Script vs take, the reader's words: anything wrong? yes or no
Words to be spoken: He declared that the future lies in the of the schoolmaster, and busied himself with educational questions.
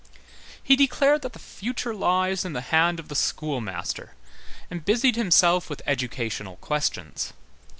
yes